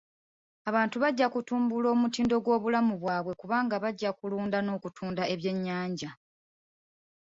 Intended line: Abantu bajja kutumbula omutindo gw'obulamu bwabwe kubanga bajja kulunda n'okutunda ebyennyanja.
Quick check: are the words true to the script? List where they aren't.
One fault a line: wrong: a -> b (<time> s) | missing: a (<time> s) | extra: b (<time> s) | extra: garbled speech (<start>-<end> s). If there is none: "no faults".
no faults